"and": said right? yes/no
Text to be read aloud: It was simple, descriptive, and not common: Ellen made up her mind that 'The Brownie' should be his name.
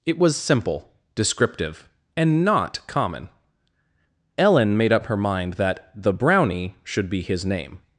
yes